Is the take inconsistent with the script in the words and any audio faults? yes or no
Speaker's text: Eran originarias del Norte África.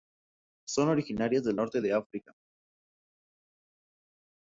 yes